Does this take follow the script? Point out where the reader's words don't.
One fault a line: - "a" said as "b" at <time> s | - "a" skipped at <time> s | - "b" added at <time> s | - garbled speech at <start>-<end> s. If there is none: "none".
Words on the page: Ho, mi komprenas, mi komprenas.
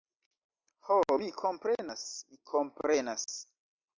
none